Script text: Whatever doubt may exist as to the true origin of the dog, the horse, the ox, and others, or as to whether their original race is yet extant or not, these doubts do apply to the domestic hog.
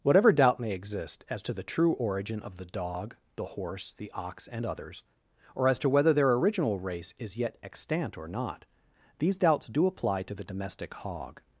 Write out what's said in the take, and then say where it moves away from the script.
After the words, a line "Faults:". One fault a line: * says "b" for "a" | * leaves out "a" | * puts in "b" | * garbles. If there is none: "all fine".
Whatever doubt may exist as to the true origin of the dog, the horse, the ox, and others, or as to whether their original race is yet extant or not, these doubts do apply to the domestic hog.
Faults:
all fine